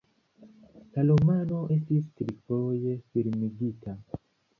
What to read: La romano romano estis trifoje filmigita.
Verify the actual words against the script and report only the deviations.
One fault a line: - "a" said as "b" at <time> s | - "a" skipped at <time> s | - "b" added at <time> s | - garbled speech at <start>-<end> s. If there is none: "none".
- "romano" skipped at 1.6 s